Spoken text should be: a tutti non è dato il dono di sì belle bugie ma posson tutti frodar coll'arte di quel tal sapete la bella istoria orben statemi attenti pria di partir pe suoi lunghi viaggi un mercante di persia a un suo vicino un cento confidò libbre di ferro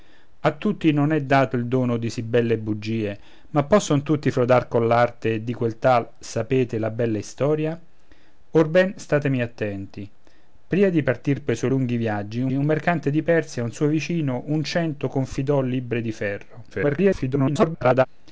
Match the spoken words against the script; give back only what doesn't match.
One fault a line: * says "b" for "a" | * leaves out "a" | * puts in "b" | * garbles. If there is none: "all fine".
* puts in "un"
* garbles